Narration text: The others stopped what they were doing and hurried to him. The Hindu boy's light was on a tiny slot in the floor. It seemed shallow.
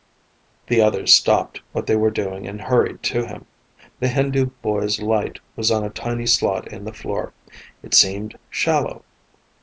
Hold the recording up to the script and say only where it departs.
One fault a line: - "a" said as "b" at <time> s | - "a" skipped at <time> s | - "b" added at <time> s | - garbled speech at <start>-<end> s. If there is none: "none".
none